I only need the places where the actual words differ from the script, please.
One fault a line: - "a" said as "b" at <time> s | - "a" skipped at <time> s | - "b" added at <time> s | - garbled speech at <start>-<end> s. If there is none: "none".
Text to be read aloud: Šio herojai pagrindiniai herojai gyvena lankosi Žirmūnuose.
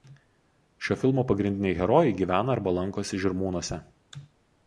- "herojai" said as "filmo" at 1.0 s
- "arba" added at 2.5 s